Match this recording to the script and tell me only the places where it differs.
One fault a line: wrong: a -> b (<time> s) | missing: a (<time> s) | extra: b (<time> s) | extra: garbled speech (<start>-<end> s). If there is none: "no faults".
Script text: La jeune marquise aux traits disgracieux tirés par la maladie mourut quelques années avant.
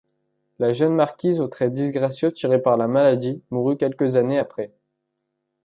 wrong: avant -> après (4.4 s)